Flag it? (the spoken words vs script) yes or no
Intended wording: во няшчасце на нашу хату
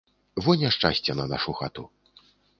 no